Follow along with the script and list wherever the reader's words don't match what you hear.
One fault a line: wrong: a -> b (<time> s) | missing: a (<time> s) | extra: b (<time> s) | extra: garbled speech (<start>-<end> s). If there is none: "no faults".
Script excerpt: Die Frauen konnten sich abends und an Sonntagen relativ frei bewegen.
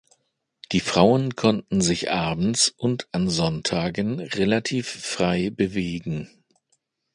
no faults